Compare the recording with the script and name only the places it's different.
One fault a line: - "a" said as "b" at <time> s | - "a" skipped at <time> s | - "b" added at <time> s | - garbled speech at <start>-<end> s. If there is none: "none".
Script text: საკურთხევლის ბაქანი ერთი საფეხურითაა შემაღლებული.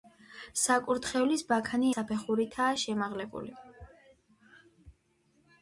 - "ერთი" skipped at 1.9 s